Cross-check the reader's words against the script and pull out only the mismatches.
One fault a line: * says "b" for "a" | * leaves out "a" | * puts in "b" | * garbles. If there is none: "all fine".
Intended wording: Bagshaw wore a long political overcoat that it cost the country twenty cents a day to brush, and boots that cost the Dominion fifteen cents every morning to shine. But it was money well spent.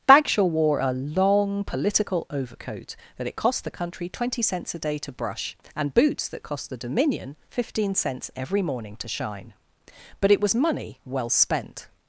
all fine